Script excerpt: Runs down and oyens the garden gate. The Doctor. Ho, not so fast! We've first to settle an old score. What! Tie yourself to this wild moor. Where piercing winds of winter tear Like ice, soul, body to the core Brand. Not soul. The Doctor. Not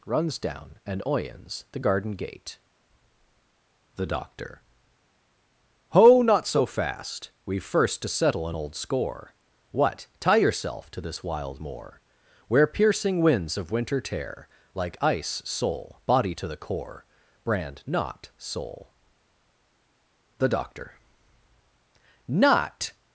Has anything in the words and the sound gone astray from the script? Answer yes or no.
no